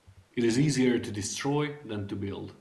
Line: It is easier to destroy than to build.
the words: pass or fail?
pass